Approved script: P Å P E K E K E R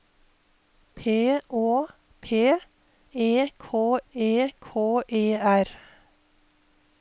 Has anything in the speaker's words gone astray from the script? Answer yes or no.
no